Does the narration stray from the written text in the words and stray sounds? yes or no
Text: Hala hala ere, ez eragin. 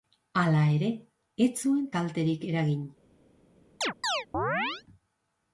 yes